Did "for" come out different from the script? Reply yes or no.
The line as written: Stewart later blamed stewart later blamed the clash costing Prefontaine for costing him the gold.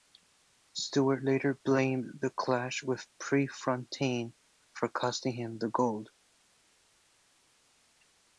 no